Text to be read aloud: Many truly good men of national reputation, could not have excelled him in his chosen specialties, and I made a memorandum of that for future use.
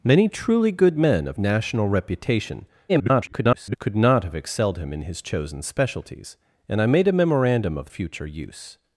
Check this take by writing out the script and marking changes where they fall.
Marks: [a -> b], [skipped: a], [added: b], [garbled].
Many truly good men of national reputation, [garbled] could not have excelled him in his chosen specialties, and I made a memorandum of [skipped: that for] future use.